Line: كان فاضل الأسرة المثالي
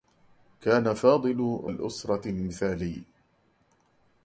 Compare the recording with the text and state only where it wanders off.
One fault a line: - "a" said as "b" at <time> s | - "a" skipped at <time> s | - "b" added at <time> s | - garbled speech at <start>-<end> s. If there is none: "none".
none